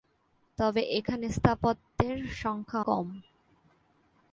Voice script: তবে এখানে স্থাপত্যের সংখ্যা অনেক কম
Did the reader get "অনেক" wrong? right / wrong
wrong